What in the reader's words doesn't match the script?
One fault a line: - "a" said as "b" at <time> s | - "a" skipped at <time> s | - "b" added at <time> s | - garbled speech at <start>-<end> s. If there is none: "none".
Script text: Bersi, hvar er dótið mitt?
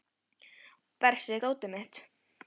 - "hvar" skipped at 1.4 s